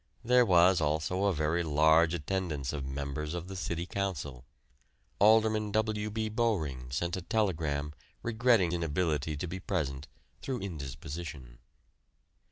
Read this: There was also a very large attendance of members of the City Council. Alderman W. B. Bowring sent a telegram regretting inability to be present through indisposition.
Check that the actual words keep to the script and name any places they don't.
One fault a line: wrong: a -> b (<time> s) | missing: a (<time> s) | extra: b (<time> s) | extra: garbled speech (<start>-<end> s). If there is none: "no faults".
no faults